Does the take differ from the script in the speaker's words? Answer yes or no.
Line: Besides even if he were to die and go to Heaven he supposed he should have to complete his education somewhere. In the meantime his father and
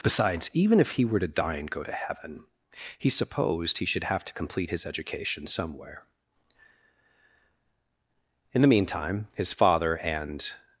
no